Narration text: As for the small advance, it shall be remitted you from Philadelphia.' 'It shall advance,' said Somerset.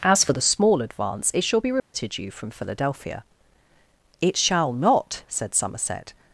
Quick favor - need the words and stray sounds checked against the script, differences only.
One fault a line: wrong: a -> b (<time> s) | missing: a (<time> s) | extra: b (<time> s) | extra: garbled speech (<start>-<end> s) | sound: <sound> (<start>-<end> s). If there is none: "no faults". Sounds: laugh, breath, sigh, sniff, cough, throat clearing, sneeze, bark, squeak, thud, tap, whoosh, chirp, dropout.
sound: dropout (1.8-1.9 s)
wrong: advance -> not (4.7 s)